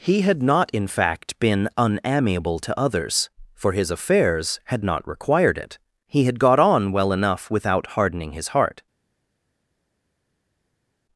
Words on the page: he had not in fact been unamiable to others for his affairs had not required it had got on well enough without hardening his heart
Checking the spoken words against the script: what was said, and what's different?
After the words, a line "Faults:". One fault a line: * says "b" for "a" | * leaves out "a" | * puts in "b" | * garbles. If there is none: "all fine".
he had not in fact been unamiable to others for his affairs had not required it he had got on well enough without hardening his heart
Faults:
* puts in "he"